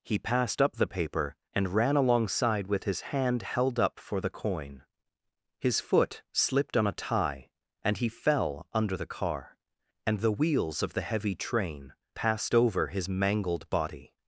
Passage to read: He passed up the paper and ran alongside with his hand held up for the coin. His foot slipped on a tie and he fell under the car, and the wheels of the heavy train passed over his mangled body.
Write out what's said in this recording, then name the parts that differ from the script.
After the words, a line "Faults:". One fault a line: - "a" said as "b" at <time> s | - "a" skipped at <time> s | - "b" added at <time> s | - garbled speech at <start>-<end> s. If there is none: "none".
He passed up the paper and ran alongside with his hand held up for the coin. His foot slipped on a tie and he fell under the car, and the wheels of the heavy train passed over his mangled body.
Faults:
none